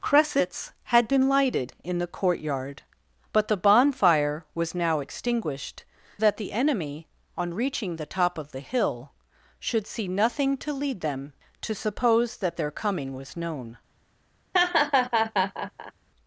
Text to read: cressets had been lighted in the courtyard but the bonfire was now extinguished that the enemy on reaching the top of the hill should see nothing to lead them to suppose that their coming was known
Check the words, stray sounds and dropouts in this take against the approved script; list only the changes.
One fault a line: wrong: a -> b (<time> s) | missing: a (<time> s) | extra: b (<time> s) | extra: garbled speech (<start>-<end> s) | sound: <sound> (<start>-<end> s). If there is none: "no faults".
sound: laugh (14.5-15.9 s)